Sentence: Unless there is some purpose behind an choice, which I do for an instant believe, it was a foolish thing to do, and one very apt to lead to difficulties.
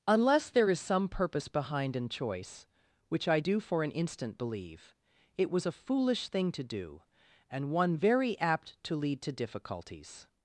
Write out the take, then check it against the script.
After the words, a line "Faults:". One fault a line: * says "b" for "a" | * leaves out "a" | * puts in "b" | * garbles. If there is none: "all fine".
Unless there is some purpose behind an choice, which I do for an instant believe, it was a foolish thing to do, and one very apt to lead to difficulties.
Faults:
all fine